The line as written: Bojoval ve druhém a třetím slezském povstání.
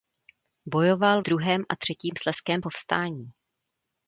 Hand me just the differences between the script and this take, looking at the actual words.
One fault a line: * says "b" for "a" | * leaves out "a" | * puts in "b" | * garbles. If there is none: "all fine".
* leaves out "ve"